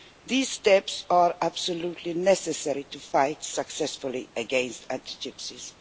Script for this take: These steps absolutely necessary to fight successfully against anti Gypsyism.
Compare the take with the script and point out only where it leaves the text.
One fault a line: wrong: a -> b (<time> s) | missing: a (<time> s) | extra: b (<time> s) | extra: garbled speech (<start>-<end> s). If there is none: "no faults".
extra: are (1.1 s)